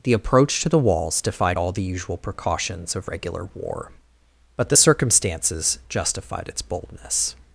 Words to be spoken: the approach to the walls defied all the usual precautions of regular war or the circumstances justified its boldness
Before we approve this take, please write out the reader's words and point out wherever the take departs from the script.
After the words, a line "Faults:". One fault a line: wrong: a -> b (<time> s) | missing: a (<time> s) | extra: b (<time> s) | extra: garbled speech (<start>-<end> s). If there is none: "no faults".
the approach to the walls defied all the usual precautions of regular war but the circumstances justified its boldness
Faults:
wrong: or -> but (4.5 s)